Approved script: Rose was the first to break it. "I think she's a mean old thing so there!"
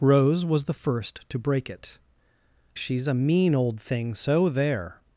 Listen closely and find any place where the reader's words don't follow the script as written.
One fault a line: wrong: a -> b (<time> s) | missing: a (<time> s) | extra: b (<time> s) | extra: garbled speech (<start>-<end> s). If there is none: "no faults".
missing: I think (2.0 s)